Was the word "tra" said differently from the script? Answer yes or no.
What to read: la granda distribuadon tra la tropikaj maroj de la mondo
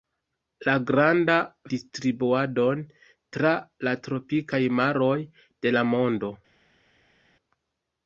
no